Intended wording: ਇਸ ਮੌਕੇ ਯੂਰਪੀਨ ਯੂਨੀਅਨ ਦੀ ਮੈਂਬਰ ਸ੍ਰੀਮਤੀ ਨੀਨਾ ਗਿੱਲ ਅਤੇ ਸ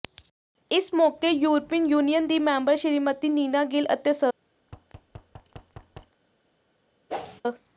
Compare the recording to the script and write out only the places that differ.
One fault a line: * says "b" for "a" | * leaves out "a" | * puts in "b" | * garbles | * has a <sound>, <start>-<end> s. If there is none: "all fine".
* has a thud, 4.6-6.2 s
* has a whoosh, 7.1-7.4 s